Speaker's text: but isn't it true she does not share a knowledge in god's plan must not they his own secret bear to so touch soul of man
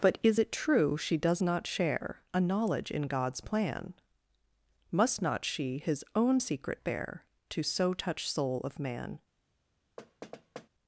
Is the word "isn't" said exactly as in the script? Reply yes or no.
no